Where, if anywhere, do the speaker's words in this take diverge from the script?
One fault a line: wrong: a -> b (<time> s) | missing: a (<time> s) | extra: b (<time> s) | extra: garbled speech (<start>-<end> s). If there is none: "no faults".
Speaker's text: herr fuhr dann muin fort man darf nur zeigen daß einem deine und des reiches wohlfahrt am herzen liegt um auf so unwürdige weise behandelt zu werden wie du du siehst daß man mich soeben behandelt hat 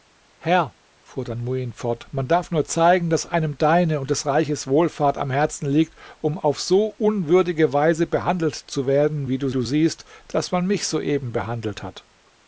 no faults